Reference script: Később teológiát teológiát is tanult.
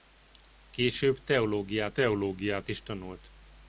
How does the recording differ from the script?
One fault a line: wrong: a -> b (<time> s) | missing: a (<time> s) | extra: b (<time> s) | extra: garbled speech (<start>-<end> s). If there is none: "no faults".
no faults